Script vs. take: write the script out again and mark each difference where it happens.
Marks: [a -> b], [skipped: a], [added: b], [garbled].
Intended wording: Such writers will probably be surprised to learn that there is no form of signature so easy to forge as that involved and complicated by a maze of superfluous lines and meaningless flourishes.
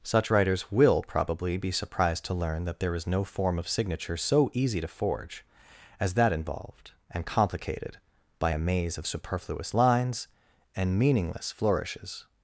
Such writers will probably be surprised to learn that there is no form of signature so easy to forge as that involved and complicated by a maze of superfluous lines and meaningless flourishes.